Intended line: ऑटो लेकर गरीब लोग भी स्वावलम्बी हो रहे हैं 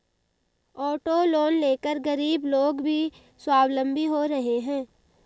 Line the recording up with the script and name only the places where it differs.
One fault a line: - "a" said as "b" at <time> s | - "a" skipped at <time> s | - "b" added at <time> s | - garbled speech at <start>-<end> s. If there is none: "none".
- "लोन" added at 1.2 s